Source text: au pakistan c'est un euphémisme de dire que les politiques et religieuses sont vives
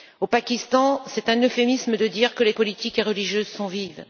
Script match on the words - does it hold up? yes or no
yes